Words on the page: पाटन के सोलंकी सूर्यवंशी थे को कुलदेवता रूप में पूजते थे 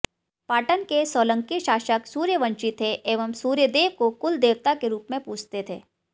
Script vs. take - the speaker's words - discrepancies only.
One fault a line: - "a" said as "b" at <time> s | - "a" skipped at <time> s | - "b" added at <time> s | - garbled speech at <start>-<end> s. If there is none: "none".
- "शासक" added at 1.6 s
- "एवं सूर्यदेव" added at 3.1 s
- "के" added at 4.8 s